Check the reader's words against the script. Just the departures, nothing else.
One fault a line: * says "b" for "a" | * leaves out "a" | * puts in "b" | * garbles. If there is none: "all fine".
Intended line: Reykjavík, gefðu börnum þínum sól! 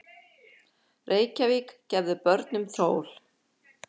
* leaves out "þínum"